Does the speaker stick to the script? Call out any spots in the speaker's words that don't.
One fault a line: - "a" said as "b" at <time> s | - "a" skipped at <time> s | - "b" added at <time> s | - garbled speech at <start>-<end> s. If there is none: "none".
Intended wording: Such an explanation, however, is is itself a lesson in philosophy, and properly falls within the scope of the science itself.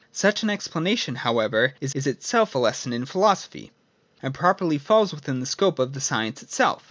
none